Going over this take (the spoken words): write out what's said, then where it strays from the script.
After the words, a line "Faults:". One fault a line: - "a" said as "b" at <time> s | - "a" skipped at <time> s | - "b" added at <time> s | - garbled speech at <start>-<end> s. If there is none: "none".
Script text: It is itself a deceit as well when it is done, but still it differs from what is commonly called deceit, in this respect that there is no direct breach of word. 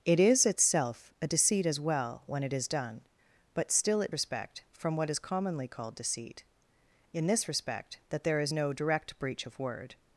It is itself a deceit as well when it is done, but still it respect from what is commonly called deceit, in this respect that there is no direct breach of word.
Faults:
- "differs" said as "respect" at 4.1 s